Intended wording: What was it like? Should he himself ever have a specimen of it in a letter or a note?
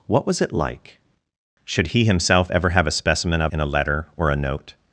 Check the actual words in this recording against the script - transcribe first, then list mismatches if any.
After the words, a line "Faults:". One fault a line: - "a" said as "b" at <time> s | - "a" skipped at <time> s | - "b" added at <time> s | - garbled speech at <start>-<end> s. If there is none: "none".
What was it like? Should he himself ever have a specimen of in a letter or a note?
Faults:
- "it" skipped at 3.5 s